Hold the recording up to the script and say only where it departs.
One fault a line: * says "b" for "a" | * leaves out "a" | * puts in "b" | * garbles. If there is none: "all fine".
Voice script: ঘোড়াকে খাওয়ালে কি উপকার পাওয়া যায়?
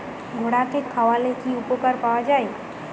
all fine